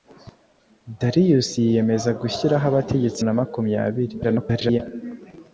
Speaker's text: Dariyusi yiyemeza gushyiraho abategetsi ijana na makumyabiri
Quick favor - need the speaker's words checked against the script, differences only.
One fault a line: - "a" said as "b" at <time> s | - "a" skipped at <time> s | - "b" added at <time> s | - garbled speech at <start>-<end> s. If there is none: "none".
- "ijana" skipped at 3.2 s
- garbled speech at 4.2-4.8 s